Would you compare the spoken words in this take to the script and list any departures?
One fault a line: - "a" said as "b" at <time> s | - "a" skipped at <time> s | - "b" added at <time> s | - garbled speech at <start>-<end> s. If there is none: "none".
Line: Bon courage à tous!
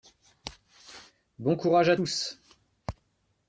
none